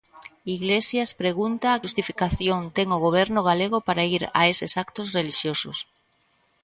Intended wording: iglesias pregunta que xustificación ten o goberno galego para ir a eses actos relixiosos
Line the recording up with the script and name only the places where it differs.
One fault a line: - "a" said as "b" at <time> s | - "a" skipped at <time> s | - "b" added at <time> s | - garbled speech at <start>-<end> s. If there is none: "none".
- "que" skipped at 1.8 s